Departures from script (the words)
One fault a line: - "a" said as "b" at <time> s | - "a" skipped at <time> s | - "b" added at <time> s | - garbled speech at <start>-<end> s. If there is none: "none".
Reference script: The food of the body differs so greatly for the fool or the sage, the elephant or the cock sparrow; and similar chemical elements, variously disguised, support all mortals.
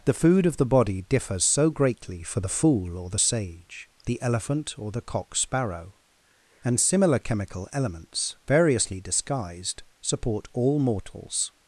none